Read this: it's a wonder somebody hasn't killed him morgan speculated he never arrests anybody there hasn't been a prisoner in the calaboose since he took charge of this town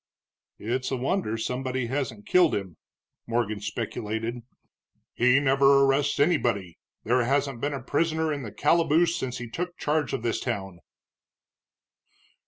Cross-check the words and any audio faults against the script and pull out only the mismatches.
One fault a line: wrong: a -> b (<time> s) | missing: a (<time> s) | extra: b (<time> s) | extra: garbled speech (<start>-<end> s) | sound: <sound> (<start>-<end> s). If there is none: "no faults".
no faults